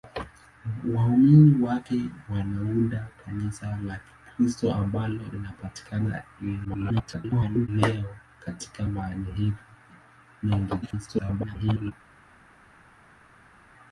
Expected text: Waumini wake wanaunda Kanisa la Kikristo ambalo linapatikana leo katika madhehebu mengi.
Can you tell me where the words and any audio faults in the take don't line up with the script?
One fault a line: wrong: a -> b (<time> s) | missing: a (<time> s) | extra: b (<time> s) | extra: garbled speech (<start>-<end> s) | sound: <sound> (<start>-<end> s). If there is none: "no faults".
extra: garbled speech (6.6-7.7 s)
extra: garbled speech (10.8-11.9 s)